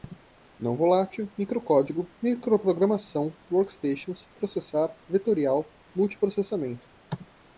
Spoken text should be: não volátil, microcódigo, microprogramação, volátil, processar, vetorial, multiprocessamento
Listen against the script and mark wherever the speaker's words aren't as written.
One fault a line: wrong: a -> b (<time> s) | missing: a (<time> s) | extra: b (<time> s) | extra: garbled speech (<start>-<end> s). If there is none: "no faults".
wrong: volátil -> workstations (3.5 s)